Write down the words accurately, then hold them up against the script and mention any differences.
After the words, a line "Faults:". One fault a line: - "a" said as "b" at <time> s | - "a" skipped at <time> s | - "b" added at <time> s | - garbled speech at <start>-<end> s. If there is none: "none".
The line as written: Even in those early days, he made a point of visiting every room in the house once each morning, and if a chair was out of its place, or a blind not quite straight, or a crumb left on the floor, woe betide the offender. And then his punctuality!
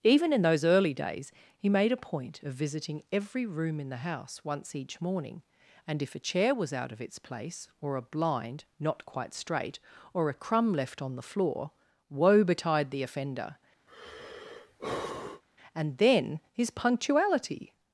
Even in those early days, he made a point of visiting every room in the house once each morning, and if a chair was out of its place, or a blind not quite straight, or a crumb left on the floor, woe betide the offender. And then his punctuality!
Faults:
none